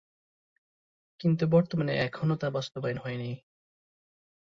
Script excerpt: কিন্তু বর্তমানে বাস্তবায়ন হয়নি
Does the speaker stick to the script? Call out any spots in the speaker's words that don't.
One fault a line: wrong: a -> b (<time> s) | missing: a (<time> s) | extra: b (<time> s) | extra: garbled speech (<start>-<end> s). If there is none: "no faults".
extra: এখনো তা (2.0 s)